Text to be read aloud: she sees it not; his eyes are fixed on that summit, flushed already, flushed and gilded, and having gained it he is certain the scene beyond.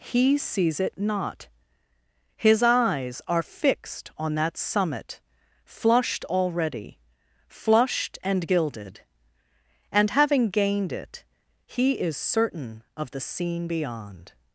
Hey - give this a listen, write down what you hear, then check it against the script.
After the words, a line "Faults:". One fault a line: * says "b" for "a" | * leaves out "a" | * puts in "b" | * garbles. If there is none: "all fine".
he sees it not; his eyes are fixed on that summit, flushed already, flushed and gilded, and having gained it he is certain of the scene beyond.
Faults:
* says "he" for "she"
* puts in "of"